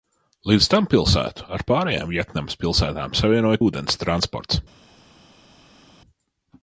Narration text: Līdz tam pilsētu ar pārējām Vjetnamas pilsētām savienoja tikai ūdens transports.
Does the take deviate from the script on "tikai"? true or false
true